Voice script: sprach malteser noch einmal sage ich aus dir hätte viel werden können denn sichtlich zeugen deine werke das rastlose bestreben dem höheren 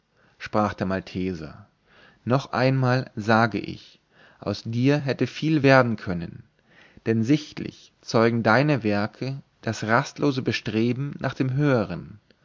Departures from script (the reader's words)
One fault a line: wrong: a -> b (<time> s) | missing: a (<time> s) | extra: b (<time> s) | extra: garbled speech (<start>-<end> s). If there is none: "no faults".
extra: der (0.7 s)
extra: nach (11.2 s)